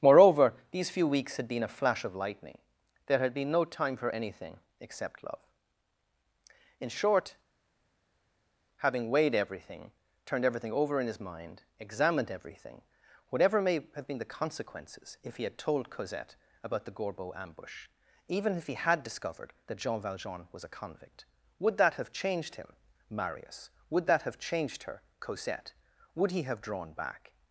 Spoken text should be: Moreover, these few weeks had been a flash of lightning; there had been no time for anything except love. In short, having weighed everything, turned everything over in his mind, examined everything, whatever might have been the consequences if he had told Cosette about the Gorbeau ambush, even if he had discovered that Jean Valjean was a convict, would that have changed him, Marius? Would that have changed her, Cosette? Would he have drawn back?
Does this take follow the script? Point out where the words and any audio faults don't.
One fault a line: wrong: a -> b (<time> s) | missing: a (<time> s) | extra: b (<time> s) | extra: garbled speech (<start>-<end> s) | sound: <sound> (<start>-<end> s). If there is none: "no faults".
wrong: might -> may (13.6 s)